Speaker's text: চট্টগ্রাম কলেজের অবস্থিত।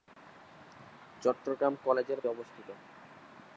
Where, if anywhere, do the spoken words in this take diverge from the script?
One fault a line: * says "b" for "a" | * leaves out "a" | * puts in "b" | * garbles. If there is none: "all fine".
all fine